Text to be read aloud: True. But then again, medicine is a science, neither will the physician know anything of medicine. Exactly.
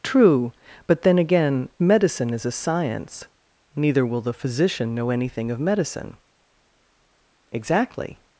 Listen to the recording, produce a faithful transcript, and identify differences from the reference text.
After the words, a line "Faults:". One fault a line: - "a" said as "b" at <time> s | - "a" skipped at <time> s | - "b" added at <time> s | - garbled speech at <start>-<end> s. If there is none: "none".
True. But then again, medicine is a science, neither will the physician know anything of medicine. Exactly.
Faults:
none